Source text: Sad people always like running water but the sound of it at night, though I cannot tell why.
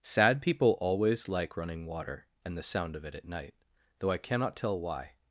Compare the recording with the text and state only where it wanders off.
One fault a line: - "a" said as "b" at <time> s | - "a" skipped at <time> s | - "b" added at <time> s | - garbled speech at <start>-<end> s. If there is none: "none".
- "but" said as "and" at 2.4 s